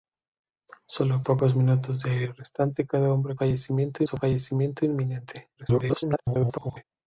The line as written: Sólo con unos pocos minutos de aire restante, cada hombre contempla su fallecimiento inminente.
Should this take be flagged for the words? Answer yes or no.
yes